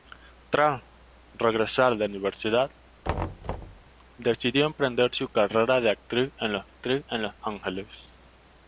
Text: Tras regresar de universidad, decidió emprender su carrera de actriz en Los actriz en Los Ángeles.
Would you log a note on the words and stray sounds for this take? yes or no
yes